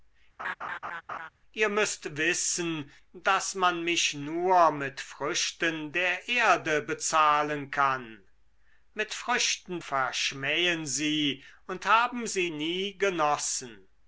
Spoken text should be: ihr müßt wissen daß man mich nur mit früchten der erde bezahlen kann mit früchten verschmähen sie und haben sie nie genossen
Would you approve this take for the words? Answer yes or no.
yes